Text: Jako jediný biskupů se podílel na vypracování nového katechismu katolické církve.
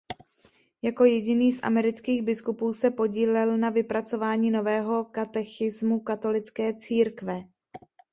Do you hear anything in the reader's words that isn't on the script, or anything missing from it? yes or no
yes